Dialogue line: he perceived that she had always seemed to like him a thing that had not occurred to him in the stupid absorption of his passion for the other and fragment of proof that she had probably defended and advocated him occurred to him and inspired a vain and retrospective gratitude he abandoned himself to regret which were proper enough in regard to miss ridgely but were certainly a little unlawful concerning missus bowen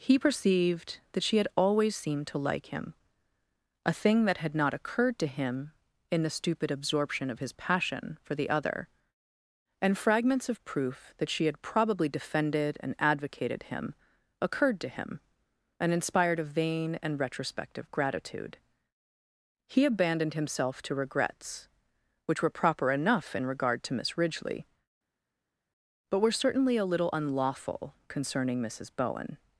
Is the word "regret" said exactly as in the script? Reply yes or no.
no